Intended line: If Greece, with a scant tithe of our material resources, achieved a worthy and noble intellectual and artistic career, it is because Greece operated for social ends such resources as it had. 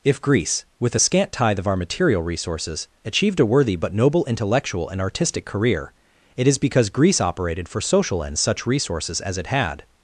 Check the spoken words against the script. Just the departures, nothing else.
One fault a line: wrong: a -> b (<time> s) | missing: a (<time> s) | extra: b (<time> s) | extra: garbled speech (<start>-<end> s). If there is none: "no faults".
wrong: and -> but (3.8 s)